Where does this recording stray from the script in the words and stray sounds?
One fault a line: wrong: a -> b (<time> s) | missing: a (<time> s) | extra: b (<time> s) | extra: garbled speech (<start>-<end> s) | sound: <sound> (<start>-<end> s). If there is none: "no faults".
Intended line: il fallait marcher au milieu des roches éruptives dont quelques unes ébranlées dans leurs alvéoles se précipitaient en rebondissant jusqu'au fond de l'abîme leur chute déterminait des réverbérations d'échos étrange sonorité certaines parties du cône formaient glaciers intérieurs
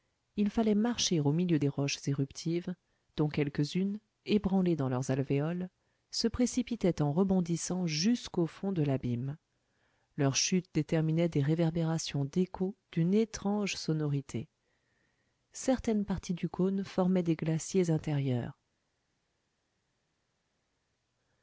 extra: d'une (12.9 s)
extra: des (17.2 s)